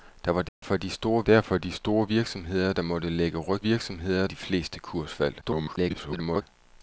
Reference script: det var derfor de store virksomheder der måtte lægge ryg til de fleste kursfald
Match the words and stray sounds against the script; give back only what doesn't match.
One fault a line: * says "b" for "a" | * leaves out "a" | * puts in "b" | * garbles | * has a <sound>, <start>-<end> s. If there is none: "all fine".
* has a dropout, 0.5-0.6 s
* puts in "derfor de store"
* says "virksomheder" for "til"
* garbles